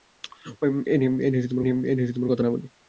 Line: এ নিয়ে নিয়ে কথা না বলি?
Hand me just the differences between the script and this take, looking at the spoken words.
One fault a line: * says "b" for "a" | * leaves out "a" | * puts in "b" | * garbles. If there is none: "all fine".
all fine